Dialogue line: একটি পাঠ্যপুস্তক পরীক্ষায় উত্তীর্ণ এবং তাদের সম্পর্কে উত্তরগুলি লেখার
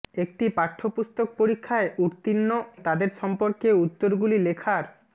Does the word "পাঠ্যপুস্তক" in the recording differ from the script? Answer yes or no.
no